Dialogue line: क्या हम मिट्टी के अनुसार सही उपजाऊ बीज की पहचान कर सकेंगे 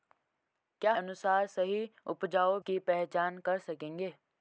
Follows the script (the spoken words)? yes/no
no